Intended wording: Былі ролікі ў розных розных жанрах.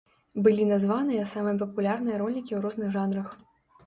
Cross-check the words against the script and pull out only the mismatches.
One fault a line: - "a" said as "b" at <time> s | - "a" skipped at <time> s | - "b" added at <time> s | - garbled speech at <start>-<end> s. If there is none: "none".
- "названыя самыя папулярныя" added at 0.7 s
- "розных" skipped at 2.9 s